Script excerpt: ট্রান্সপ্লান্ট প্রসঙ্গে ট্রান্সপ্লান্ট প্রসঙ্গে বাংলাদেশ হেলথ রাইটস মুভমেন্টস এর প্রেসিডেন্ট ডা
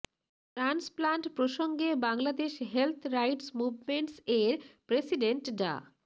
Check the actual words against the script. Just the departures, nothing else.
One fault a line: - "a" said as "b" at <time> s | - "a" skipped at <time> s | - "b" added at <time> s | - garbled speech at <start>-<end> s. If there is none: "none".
- "ট্রান্সপ্লান্ট প্রসঙ্গে" skipped at 1.9 s